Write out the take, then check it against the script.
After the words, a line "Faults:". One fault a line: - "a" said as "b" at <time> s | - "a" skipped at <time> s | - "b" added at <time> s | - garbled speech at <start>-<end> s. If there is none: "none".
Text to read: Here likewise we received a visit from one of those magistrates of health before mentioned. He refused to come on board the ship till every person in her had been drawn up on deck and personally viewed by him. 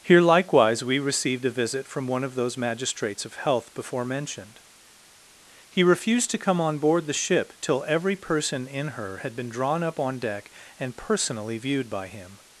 Here likewise we received a visit from one of those magistrates of health before mentioned. He refused to come on board the ship till every person in her had been drawn up on deck and personally viewed by him.
Faults:
none